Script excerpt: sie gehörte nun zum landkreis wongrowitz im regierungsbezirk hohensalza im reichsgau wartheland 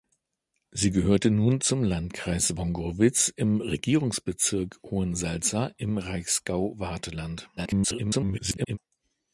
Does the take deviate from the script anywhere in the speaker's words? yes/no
yes